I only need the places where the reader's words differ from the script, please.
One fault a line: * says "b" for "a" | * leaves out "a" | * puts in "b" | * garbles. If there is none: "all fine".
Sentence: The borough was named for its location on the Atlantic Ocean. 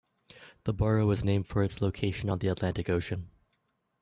all fine